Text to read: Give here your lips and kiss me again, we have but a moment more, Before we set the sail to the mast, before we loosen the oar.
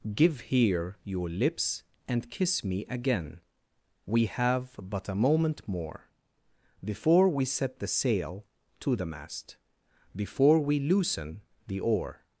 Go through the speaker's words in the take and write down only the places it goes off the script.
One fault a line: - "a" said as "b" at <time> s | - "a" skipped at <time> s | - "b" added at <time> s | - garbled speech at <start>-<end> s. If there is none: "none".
none